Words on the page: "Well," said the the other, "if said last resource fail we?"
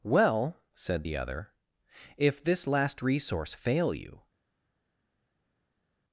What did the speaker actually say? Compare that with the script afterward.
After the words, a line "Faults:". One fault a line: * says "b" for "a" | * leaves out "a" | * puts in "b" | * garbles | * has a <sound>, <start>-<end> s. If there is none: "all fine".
"Well," said the other, "if this last resource fail you?"
Faults:
* leaves out "the"
* says "this" for "said"
* says "you" for "we"